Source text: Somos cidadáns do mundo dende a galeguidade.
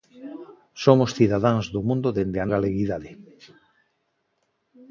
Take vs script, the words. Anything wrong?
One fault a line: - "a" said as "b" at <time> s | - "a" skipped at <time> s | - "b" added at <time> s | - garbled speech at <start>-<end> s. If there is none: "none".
none